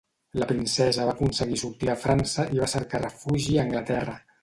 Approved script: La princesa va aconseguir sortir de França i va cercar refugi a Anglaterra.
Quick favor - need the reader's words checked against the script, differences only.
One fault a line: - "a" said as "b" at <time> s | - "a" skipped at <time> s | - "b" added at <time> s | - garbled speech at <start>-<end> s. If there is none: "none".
none